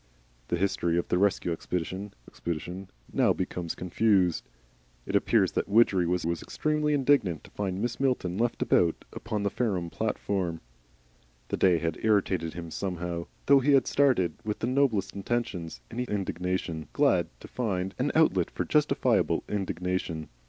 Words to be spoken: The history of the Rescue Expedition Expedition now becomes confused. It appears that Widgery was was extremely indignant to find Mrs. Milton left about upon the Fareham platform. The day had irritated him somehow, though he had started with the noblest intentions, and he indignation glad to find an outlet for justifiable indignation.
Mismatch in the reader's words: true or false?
false